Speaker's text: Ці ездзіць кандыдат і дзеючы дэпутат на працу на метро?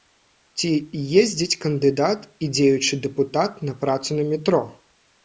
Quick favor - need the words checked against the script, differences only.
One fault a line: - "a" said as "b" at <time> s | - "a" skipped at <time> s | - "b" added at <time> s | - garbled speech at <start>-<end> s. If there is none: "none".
none